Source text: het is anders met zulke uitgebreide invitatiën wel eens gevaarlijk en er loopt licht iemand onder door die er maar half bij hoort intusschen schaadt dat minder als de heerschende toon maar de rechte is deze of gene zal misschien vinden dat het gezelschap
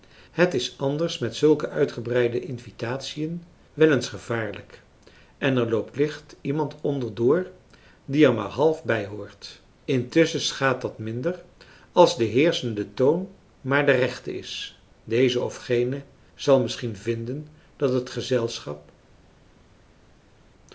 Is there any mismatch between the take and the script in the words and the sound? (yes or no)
no